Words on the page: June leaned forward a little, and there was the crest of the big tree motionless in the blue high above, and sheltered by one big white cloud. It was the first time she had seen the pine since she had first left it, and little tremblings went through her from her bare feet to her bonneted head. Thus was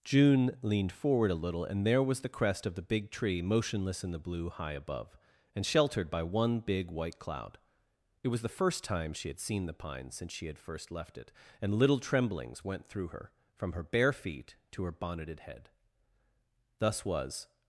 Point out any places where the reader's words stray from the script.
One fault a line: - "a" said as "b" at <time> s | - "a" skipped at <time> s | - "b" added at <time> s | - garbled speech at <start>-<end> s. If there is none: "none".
none